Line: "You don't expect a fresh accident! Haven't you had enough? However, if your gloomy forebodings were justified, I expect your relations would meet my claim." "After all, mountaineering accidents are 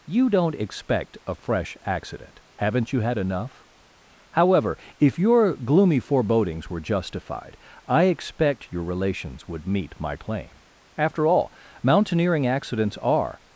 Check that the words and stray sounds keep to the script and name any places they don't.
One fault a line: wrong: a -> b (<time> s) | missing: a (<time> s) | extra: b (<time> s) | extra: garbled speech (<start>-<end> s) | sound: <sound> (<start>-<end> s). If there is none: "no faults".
no faults